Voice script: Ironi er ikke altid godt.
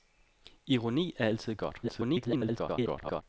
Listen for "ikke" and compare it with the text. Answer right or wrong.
wrong